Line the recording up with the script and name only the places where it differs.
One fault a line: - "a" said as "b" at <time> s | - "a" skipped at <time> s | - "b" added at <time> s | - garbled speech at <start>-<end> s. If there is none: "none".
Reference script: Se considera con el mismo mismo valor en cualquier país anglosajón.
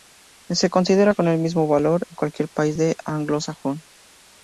- "mismo" skipped at 1.7 s